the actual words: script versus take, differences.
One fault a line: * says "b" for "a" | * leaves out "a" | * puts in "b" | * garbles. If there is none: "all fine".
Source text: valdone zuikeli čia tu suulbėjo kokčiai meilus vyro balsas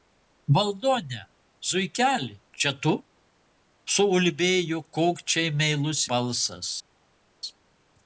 * leaves out "vyro"